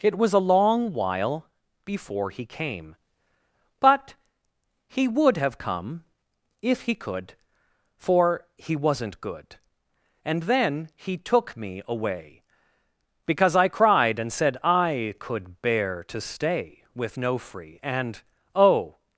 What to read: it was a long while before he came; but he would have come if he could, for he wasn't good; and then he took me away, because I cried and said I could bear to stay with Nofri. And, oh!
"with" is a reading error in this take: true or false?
false